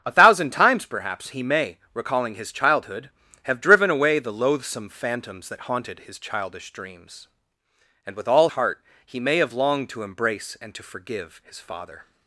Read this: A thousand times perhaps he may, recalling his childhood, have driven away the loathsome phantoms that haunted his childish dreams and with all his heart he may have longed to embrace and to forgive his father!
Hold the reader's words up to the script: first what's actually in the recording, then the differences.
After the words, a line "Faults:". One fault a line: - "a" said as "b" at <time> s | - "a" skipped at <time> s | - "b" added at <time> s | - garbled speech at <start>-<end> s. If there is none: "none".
A thousand times perhaps he may, recalling his childhood, have driven away the loathsome phantoms that haunted his childish dreams and with all heart he may have longed to embrace and to forgive his father!
Faults:
- "his" skipped at 8.5 s